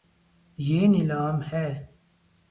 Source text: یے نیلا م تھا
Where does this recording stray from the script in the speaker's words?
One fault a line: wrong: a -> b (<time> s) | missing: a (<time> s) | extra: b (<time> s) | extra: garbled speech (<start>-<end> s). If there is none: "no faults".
wrong: تھا -> ہے (1.5 s)